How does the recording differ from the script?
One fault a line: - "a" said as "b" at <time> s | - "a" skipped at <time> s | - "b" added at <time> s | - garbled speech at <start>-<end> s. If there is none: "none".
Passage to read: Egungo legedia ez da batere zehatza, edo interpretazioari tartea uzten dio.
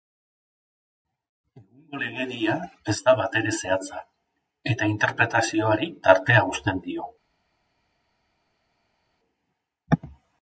- "edo" said as "eta" at 4.8 s